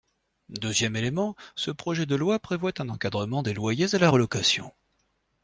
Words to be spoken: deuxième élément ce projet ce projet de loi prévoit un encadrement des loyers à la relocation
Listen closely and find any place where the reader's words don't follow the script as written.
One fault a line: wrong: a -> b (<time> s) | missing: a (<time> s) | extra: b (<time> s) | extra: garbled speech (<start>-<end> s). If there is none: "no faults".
missing: ce projet (2.0 s)